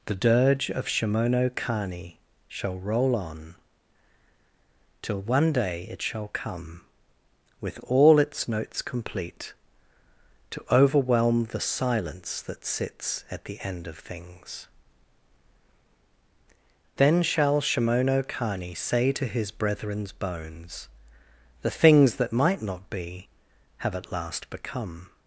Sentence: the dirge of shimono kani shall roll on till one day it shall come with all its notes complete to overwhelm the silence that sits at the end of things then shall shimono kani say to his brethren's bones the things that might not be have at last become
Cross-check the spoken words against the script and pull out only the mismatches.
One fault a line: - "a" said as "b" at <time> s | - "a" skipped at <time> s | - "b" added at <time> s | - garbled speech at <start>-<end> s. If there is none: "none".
none